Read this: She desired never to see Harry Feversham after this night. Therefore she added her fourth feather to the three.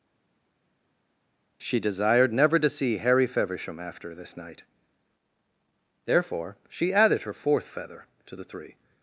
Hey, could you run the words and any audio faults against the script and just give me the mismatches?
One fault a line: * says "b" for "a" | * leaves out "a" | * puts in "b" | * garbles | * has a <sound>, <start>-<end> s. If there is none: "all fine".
all fine